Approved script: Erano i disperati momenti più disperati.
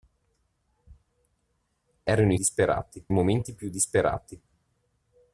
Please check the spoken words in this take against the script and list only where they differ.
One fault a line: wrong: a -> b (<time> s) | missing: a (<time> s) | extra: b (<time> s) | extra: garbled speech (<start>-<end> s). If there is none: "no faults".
no faults